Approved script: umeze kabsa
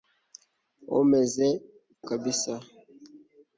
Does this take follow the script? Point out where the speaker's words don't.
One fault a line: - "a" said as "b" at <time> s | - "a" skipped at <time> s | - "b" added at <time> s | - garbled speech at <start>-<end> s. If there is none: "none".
none